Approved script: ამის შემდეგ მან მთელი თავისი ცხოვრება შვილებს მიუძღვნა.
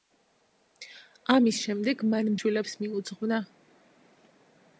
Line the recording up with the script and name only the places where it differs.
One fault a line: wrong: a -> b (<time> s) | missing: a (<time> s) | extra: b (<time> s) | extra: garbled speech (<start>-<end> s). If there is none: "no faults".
missing: მთელი თავისი ცხოვრება (2.3 s)